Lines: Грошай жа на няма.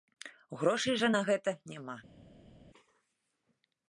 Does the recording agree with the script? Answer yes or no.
no